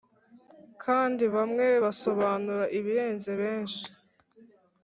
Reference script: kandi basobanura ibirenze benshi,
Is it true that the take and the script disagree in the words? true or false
true